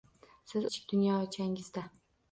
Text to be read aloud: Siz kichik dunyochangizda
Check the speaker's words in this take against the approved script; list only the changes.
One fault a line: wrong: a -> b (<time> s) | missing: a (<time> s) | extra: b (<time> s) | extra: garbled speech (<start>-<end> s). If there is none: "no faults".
no faults